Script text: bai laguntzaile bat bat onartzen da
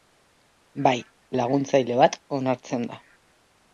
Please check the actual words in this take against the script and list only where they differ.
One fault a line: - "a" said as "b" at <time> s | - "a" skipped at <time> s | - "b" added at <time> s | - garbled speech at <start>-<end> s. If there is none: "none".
- "bat" skipped at 2.2 s